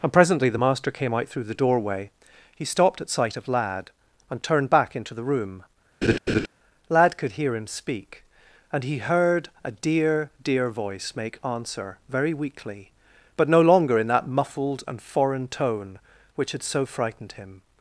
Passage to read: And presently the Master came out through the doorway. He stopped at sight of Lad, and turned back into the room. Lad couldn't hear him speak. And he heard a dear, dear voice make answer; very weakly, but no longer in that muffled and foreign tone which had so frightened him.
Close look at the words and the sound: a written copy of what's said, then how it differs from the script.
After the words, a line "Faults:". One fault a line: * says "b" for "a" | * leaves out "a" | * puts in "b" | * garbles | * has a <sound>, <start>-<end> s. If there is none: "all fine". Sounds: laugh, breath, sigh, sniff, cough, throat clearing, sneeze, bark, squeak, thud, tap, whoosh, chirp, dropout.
And presently the Master came out through the doorway. He stopped at sight of Lad, and turned back into the room. Lad could hear him speak. And he heard a dear, dear voice make answer; very weakly, but no longer in that muffled and foreign tone which had so frightened him.
Faults:
* has a laugh, 6.0-6.5 s
* says "could" for "couldn't"